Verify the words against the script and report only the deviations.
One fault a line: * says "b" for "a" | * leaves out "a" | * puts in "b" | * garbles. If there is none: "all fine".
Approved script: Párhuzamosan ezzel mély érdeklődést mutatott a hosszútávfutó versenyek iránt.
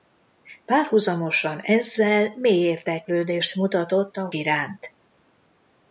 * leaves out "hosszútávfutó versenyek"